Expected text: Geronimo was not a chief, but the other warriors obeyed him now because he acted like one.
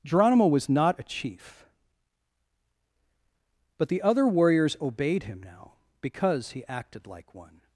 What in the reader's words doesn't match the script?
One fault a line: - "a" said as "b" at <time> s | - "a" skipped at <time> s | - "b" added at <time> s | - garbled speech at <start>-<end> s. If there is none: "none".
none